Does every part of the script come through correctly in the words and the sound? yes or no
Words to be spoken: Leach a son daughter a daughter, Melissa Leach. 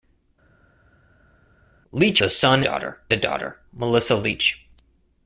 yes